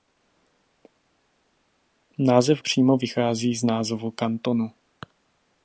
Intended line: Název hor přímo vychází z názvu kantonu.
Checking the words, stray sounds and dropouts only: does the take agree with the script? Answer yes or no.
no